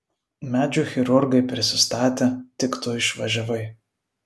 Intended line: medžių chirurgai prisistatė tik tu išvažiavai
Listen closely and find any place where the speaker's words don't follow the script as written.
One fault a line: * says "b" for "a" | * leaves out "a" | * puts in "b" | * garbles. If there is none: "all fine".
all fine